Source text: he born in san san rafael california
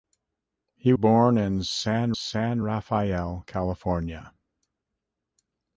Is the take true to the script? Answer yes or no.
yes